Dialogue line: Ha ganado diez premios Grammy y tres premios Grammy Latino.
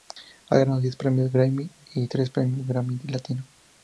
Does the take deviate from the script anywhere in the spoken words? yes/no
no